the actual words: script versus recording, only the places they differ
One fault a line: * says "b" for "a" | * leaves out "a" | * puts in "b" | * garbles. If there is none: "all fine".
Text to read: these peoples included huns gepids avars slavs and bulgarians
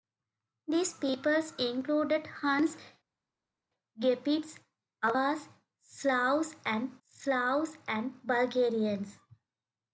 * puts in "slavs and"